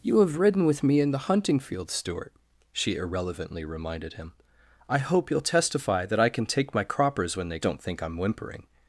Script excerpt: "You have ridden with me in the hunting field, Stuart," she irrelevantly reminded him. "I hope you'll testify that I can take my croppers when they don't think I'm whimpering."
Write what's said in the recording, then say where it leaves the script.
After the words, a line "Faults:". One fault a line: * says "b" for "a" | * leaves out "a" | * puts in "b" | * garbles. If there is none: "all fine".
"You have ridden with me in the hunting field, Stuart," she irrelevantly reminded him. "I hope you'll testify that I can take my croppers when they don't think I'm whimpering."
Faults:
all fine